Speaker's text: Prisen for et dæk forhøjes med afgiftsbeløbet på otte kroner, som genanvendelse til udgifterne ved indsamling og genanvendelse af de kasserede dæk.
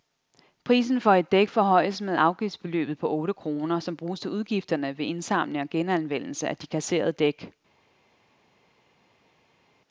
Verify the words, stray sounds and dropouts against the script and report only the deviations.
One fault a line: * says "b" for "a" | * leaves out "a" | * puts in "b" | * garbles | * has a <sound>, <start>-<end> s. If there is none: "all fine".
* says "bruges" for "genanvendelse"